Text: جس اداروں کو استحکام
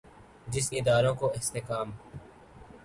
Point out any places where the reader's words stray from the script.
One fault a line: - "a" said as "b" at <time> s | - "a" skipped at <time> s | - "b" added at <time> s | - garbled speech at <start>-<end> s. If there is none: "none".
none